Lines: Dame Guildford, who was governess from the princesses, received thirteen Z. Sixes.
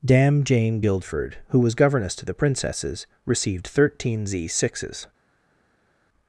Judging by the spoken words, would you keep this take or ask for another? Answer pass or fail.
fail